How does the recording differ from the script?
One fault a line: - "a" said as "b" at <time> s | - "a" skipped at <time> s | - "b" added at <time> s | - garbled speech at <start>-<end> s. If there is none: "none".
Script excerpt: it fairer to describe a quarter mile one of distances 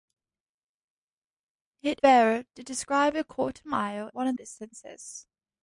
none